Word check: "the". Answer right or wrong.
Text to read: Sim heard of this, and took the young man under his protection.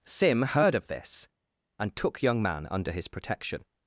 wrong